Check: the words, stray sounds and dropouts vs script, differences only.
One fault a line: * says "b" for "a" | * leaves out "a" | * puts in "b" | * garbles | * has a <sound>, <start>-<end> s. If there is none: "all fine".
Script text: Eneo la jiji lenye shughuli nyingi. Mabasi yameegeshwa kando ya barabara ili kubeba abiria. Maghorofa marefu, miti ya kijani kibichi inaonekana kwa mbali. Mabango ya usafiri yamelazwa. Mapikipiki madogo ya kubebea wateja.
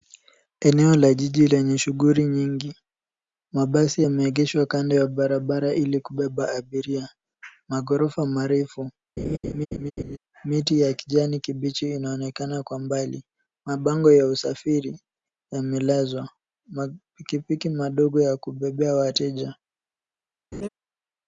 * has a laugh, 9.2-10.2 s
* has a laugh, 20.5-20.7 s